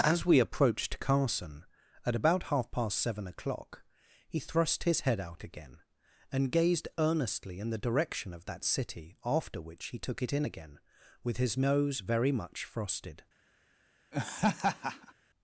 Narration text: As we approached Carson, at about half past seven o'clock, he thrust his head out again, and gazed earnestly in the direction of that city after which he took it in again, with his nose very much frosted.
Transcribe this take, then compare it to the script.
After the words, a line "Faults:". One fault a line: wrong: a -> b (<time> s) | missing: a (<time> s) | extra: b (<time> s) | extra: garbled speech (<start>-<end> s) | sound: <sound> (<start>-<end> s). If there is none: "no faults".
As we approached Carson, at about half past seven o'clock, he thrust his head out again, and gazed earnestly in the direction of that city after which he took it in again, with his nose very much frosted.
Faults:
sound: laugh (14.1-15.1 s)